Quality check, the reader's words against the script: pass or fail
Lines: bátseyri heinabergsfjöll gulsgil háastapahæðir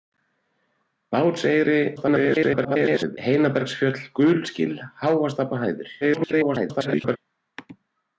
fail